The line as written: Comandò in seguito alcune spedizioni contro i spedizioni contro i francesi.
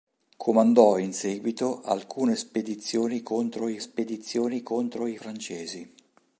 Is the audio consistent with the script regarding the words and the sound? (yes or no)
yes